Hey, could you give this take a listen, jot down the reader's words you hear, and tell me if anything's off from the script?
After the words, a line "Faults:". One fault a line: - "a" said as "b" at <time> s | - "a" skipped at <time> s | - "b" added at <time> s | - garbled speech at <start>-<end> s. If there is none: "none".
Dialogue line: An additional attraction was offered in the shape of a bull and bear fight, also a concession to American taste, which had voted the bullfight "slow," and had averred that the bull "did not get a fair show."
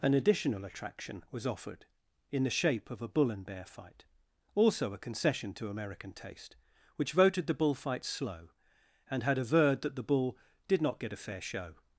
An additional attraction was offered in the shape of a bull and bear fight, also a concession to American taste, which voted the bullfight "slow," and had averred that the bull "did not get a fair show."
Faults:
- "had" skipped at 7.1 s